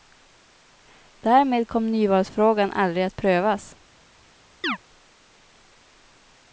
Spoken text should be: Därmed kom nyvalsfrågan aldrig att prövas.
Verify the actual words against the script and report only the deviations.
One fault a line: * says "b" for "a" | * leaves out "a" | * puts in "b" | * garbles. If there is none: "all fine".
all fine